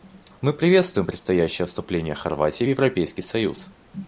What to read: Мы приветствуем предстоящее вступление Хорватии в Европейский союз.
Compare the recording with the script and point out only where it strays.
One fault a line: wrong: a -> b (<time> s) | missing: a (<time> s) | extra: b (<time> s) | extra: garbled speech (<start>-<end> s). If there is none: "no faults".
no faults